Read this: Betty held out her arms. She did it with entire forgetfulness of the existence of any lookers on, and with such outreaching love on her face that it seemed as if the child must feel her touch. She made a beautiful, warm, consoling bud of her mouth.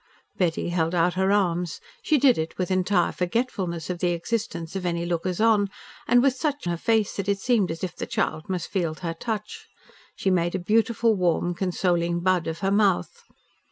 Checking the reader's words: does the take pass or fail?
fail